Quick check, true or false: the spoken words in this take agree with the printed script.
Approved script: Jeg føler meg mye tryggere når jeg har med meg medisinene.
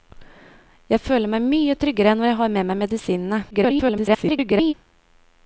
false